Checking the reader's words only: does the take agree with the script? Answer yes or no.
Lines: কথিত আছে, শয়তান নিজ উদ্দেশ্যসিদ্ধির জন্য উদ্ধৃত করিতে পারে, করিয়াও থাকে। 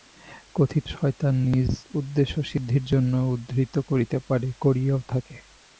no